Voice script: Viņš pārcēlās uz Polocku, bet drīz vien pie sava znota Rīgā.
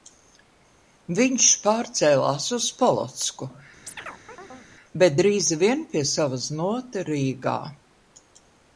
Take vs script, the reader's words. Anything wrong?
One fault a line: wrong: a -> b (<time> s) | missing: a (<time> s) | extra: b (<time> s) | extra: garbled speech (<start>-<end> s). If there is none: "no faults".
no faults